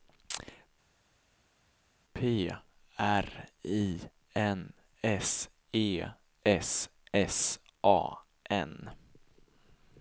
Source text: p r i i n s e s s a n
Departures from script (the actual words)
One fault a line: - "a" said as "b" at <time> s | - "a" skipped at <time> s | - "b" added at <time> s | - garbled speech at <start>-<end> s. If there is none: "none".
- "i" skipped at 4.1 s